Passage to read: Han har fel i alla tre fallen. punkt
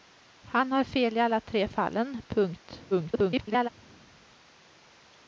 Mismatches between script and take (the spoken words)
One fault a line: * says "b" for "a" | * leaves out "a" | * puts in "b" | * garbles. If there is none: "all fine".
* garbles